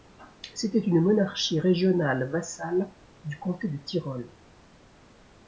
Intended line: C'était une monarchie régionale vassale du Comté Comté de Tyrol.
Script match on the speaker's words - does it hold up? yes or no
no